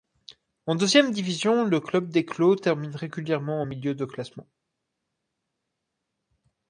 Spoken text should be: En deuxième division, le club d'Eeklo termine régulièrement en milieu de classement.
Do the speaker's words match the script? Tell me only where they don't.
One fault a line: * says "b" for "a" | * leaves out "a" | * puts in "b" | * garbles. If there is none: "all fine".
all fine